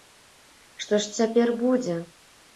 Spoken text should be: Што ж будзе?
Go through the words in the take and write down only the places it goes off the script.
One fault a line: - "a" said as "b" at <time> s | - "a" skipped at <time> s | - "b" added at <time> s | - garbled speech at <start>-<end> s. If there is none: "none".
- "цяпер" added at 1.2 s